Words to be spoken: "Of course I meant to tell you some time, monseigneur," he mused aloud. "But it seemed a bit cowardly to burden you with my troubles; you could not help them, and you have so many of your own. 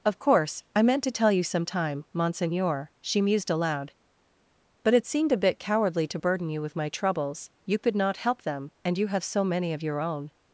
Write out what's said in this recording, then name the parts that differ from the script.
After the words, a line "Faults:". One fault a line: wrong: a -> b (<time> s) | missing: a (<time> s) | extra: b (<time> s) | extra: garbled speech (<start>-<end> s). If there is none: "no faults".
"Of course I meant to tell you some time, monseigneur," she mused aloud. "But it seemed a bit cowardly to burden you with my troubles; you could not help them, and you have so many of your own.
Faults:
wrong: he -> she (3.0 s)